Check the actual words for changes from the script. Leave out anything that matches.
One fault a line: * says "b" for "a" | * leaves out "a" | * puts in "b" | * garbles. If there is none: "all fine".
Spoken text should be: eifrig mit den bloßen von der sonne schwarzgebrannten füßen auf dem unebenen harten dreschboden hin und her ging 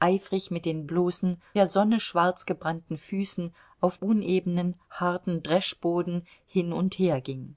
* leaves out "von"
* leaves out "dem"